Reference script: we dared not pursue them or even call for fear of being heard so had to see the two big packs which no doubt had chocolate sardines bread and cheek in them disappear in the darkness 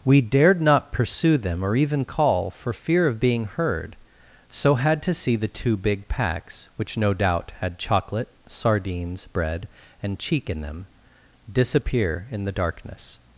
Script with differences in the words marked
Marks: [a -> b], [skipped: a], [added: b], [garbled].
we dared not pursue them or even call for fear of being heard so had to see the two big packs which no doubt had chocolate sardines bread and cheek in them disappear in the darkness